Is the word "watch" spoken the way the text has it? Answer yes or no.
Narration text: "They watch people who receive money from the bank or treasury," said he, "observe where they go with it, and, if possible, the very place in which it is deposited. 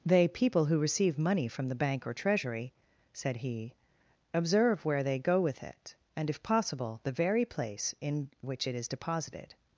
no